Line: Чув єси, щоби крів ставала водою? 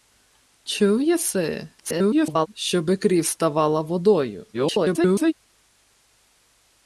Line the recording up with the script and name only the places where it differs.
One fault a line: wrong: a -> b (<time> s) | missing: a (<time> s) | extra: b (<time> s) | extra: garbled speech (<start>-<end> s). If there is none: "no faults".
extra: garbled speech (1.8-2.5 s)
extra: garbled speech (4.5-5.3 s)